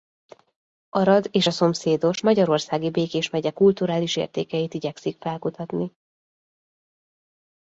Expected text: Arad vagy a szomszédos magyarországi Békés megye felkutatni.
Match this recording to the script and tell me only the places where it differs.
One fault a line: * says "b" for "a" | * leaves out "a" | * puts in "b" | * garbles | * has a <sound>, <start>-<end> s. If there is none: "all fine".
* says "és" for "vagy"
* puts in "kulturális értékeit igyekszik"